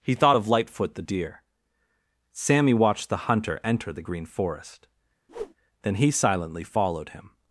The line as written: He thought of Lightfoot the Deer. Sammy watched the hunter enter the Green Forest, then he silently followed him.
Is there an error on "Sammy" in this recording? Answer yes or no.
no